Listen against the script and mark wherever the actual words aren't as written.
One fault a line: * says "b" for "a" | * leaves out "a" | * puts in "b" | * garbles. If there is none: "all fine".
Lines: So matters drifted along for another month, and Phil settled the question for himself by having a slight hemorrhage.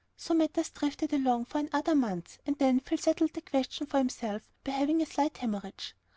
* puts in "then"